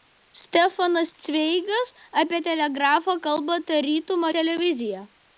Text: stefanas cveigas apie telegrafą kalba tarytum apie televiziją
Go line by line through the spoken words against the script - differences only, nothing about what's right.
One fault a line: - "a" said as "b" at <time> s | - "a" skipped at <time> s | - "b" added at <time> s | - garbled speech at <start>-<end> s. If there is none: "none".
- "apie" skipped at 4.3 s